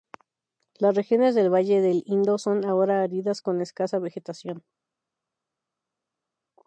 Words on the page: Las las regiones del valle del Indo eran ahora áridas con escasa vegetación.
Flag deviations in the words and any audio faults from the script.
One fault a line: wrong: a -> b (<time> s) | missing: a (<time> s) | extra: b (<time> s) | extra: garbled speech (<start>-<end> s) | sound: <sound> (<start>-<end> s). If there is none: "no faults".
missing: las (0.9 s)
wrong: eran -> son (2.4 s)